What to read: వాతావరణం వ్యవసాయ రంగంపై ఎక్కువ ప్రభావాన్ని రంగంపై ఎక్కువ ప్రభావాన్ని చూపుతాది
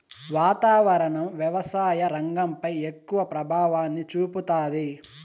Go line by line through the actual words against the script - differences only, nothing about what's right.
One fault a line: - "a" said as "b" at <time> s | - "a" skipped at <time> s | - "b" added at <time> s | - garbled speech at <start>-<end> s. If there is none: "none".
- "రంగంపై ఎక్కువ ప్రభావాన్ని" skipped at 4.1 s